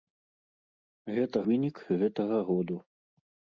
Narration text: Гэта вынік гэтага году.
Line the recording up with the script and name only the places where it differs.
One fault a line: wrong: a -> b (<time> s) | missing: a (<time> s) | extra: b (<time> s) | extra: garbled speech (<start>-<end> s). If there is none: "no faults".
no faults